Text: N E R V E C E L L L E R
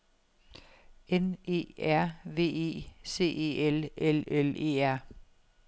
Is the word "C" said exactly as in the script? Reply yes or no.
yes